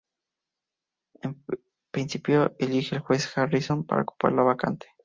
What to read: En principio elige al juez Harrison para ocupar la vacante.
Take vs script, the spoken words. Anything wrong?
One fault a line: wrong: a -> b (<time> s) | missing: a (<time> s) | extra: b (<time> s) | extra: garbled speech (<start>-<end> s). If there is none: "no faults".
no faults